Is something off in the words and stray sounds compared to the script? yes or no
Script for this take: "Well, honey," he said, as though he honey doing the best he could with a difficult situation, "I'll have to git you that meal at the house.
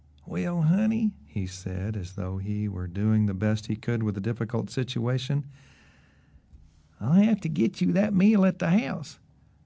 yes